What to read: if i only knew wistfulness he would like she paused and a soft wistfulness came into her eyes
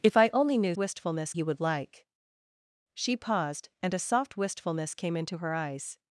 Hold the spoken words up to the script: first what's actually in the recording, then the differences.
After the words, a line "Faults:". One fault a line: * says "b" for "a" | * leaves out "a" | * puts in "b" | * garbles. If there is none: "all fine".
if i only knew wistfulness he would like she paused and a soft wistfulness came into her eyes
Faults:
all fine